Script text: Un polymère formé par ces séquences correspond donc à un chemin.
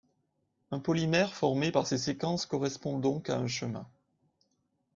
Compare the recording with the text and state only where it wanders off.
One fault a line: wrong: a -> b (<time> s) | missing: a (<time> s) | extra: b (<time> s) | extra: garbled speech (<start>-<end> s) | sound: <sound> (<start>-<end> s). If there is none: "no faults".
no faults